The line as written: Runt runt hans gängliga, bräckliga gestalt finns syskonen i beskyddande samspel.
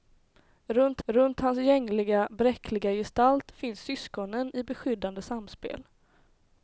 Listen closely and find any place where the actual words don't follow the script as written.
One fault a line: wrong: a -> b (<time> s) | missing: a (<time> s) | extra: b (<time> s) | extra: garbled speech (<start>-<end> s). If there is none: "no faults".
no faults